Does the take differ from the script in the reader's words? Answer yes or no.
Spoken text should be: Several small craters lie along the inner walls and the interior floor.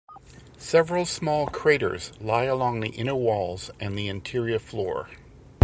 no